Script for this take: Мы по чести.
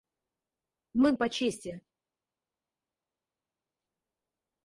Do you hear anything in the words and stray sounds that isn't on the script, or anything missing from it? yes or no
no